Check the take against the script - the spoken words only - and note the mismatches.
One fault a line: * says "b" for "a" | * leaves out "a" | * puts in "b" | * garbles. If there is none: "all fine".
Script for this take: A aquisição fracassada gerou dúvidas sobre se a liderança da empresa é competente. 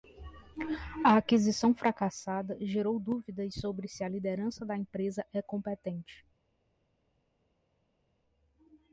all fine